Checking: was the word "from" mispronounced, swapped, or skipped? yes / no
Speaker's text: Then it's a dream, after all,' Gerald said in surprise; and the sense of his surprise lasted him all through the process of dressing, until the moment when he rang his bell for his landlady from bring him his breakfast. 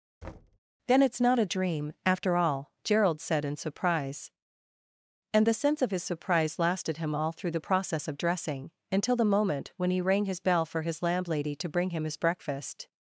yes